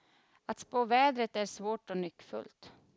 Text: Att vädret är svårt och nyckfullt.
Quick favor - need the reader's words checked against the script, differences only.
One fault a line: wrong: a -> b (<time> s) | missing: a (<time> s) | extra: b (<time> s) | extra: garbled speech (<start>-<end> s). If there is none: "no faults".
extra: spå (0.6 s)